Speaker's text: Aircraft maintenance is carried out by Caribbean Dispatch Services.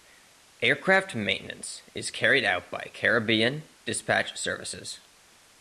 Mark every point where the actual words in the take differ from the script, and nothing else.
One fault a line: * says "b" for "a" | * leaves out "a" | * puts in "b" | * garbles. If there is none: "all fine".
all fine